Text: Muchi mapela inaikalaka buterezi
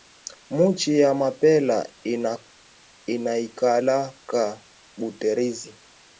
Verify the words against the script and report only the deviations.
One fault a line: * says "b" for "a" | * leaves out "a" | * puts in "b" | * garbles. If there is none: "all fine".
* puts in "ya"